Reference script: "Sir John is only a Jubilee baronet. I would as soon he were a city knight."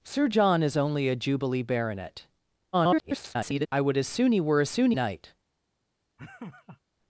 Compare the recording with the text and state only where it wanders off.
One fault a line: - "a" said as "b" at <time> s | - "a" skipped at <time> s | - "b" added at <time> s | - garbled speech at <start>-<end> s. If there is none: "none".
- garbled speech at 2.7-3.7 s
- "city" said as "soon" at 4.7 s